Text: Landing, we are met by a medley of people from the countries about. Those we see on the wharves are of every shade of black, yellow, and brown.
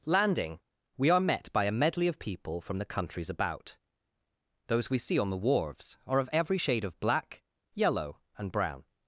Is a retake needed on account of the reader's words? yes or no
no